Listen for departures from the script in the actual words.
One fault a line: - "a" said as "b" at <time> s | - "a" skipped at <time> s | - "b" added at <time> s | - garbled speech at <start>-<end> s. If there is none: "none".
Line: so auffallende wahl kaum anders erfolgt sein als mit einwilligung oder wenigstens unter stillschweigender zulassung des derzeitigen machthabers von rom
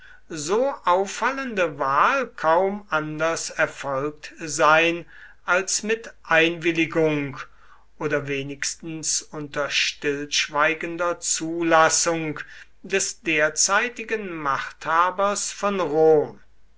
none